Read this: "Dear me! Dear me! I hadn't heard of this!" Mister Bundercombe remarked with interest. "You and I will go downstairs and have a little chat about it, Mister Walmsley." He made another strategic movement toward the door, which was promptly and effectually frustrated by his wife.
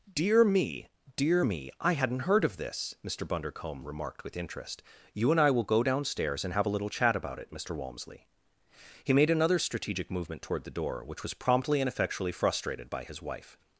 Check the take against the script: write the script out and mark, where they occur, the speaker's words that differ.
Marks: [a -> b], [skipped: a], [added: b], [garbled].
"Dear me! Dear me! I hadn't heard of this!" Mister Bundercombe remarked with interest. "You and I will go downstairs and have a little chat about it, Mister Walmsley." He made another strategic movement toward the door, which was promptly and effectually frustrated by his wife.